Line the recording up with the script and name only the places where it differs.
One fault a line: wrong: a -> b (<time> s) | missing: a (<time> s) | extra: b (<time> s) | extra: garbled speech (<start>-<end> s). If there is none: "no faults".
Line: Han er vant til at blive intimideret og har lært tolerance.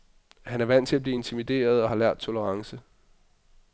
no faults